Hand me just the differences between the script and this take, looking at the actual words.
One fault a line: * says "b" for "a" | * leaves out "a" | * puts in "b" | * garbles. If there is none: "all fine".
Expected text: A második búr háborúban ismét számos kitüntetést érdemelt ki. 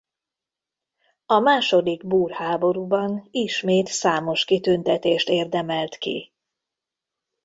all fine